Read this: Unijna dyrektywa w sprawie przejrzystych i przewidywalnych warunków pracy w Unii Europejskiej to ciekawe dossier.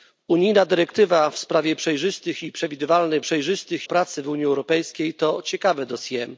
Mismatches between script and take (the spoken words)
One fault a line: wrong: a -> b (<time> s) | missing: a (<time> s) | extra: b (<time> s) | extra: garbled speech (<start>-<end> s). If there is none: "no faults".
wrong: warunków -> przejrzystych (3.2 s)